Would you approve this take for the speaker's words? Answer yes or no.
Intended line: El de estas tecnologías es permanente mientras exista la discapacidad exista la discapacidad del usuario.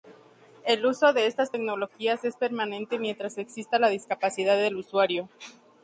no